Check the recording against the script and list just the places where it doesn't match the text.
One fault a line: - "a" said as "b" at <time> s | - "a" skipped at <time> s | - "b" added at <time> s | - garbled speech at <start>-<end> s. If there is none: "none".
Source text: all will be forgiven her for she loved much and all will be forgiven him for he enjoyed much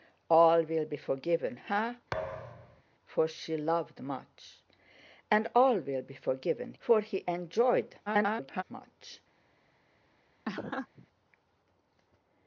- "him" skipped at 6.7 s
- garbled speech at 8.1-8.6 s